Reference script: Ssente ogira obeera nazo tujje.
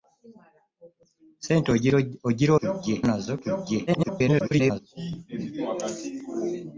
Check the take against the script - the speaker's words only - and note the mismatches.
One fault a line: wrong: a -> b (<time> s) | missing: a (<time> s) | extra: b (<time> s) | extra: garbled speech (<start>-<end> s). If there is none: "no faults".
wrong: obeera -> tujje (2.6 s)
extra: garbled speech (3.9-4.8 s)